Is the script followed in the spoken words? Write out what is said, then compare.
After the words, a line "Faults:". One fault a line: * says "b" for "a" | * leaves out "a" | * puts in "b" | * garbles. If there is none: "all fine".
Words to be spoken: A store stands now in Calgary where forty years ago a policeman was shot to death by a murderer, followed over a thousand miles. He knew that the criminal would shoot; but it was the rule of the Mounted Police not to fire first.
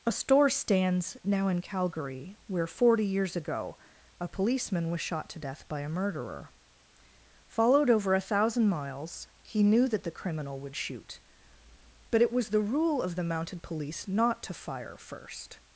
A store stands now in Calgary where forty years ago a policeman was shot to death by a murderer, followed over a thousand miles. He knew that the criminal would shoot; but it was the rule of the Mounted Police not to fire first.
Faults:
all fine